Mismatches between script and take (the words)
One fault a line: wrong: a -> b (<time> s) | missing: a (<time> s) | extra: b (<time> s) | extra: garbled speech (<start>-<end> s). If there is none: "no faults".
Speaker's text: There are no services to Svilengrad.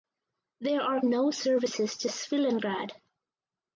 no faults